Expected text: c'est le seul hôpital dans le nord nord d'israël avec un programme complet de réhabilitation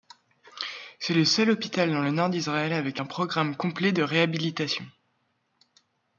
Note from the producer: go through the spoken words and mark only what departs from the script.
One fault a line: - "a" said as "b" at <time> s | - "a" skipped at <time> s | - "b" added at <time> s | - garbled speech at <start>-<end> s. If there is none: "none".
- "nord" skipped at 2.3 s